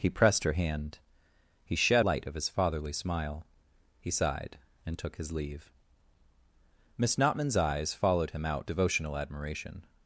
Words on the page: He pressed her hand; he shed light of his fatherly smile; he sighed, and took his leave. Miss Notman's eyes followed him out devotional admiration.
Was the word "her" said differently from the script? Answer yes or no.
no